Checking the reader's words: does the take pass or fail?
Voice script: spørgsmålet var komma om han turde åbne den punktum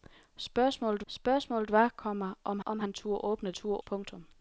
fail